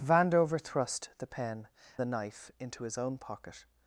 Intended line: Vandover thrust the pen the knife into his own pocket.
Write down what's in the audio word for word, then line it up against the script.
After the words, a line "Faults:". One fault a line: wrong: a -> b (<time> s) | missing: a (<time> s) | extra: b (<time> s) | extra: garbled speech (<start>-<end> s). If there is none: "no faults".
Vandover thrust the pen the knife into his own pocket.
Faults:
no faults